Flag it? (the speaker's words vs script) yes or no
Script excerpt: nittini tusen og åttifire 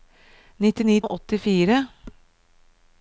yes